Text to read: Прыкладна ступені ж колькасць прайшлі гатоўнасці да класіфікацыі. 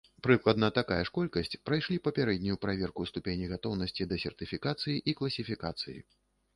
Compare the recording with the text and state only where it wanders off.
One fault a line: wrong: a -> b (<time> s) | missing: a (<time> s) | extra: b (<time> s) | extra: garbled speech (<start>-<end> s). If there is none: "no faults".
wrong: ступені -> такая (0.8 s)
extra: папярэднюю праверку ступені (2.1 s)
extra: сертыфікацыі і (4.3 s)